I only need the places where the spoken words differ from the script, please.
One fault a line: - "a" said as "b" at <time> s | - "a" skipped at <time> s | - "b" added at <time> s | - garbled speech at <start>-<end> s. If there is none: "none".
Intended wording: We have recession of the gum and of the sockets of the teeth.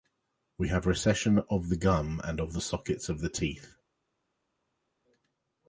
none